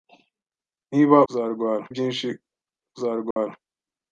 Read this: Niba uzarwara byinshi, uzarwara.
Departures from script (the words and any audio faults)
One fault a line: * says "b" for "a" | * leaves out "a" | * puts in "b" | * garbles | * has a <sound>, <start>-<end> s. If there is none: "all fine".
* has a dropout, 3.3-3.4 s